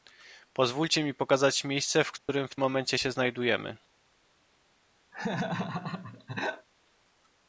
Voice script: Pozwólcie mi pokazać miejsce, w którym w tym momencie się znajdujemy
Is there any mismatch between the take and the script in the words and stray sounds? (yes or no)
yes